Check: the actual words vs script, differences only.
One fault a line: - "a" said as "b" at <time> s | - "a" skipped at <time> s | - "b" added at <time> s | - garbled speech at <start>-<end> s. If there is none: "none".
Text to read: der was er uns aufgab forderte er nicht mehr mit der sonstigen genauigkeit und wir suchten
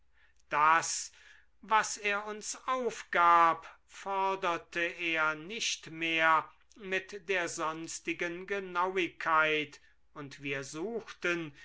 - "der" said as "das" at 0.5 s